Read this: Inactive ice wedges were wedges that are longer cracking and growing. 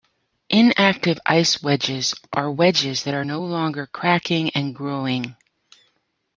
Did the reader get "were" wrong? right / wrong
wrong